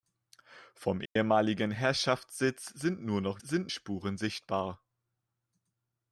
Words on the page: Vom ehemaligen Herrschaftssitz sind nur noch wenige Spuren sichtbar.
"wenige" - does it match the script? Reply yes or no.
no